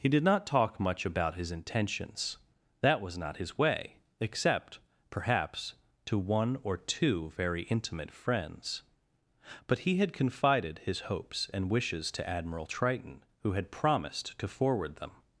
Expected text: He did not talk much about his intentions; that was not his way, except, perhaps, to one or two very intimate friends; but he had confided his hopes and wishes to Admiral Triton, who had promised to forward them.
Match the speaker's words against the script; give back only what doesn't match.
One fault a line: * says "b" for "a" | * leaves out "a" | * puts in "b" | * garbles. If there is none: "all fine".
all fine